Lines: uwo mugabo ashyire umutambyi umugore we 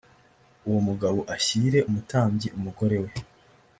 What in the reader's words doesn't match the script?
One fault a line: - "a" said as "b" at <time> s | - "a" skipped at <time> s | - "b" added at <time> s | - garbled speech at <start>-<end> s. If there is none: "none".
none